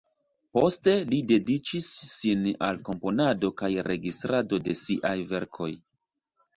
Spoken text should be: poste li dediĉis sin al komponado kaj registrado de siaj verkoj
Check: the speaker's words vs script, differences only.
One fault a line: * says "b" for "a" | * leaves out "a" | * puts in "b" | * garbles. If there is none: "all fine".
all fine